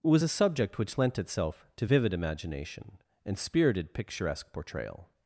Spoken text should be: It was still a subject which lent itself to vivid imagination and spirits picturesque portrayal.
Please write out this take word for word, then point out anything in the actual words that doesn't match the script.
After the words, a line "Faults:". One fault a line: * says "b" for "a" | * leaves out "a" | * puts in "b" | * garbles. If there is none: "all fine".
It was a subject which lent itself to vivid imagination and spirited picturesque portrayal.
Faults:
* leaves out "still"
* says "spirited" for "spirits"